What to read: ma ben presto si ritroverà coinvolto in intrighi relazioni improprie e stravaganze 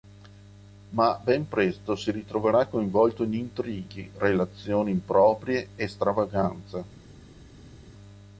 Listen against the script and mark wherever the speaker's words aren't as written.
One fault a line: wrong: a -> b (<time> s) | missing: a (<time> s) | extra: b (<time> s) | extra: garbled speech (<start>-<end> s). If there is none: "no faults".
no faults